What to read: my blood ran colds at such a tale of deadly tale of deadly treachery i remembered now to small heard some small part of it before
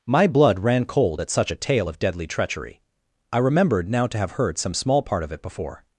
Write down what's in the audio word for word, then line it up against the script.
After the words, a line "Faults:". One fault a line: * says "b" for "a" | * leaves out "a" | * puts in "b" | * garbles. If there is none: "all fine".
my blood ran cold at such a tale of deadly treachery i remembered now to have heard some small part of it before
Faults:
* says "cold" for "colds"
* leaves out "tale of deadly"
* says "have" for "small"